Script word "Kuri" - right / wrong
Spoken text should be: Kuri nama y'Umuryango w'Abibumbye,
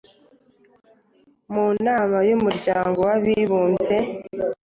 wrong